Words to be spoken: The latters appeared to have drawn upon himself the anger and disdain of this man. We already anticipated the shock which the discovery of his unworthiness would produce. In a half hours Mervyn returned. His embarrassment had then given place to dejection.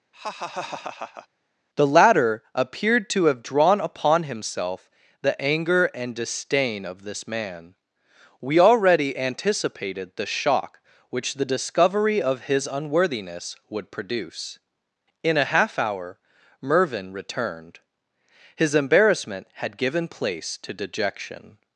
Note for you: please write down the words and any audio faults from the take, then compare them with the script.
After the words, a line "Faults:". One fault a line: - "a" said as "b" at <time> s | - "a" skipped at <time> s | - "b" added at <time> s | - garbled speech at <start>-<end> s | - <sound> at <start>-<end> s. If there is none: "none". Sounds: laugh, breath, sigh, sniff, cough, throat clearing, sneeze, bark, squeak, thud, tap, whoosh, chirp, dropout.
The latter appeared to have drawn upon himself the anger and disdain of this man. We already anticipated the shock which the discovery of his unworthiness would produce. In a half hour Mervyn returned. His embarrassment had given place to dejection.
Faults:
- laugh at 0.1-1.3 s
- "latters" said as "latter" at 1.9 s
- "hours" said as "hour" at 15.8 s
- "then" skipped at 19.8 s